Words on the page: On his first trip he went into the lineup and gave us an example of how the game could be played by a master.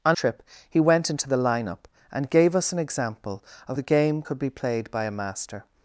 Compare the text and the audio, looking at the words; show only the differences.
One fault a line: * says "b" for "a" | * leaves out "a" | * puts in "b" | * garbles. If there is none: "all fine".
* leaves out "his first"
* leaves out "how"